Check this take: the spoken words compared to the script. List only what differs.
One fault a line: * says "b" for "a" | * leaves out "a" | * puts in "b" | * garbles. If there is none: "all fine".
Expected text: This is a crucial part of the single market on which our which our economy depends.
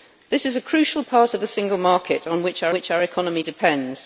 all fine